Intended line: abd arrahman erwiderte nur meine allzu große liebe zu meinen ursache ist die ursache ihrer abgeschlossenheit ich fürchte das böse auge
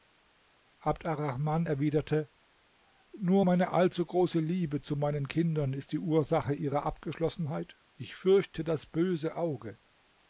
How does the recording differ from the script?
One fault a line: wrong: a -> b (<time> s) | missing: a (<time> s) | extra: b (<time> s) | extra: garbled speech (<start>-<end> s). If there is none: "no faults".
wrong: ursache -> kindern (5.3 s)